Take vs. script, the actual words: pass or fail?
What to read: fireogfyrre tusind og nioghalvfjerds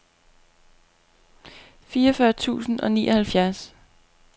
pass